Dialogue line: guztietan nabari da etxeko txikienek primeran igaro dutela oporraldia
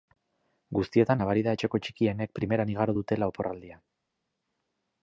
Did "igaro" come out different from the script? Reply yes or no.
no